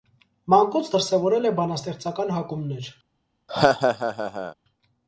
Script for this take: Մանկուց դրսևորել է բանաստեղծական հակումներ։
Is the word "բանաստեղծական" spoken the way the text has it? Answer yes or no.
yes